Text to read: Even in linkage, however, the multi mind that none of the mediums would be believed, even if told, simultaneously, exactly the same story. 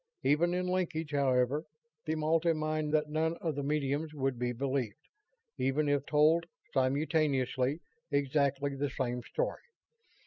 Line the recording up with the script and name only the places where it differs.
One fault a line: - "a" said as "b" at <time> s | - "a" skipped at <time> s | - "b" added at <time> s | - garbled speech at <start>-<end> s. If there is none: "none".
none